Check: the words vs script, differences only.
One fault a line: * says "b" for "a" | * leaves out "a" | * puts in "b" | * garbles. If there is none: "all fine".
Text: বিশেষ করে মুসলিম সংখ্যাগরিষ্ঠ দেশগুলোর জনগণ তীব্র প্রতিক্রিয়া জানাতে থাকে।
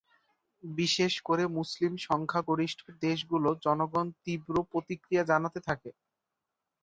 all fine